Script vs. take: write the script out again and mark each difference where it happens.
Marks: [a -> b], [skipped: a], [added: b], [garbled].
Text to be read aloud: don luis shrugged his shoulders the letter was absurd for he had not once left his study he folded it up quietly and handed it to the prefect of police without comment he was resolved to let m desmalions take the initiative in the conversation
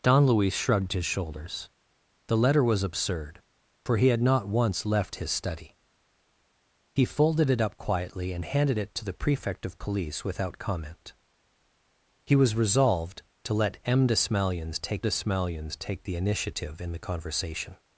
don luis shrugged his shoulders the letter was absurd for he had not once left his study he folded it up quietly and handed it to the prefect of police without comment he was resolved to let m desmalions take [added: desmalions take] the initiative in the conversation